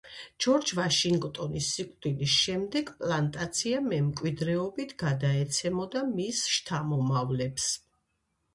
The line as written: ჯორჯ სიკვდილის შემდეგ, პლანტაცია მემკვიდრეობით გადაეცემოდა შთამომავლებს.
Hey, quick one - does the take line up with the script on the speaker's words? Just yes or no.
no